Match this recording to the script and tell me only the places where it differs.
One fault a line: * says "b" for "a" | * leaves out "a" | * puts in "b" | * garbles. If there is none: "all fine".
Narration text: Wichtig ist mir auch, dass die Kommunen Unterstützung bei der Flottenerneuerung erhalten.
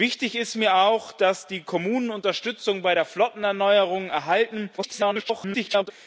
* garbles